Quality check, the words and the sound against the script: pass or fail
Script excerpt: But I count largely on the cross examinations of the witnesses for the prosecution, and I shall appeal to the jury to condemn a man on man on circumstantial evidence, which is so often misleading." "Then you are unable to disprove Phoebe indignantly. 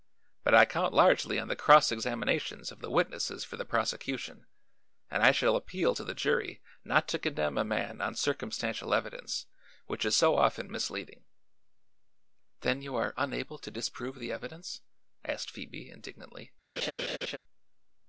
fail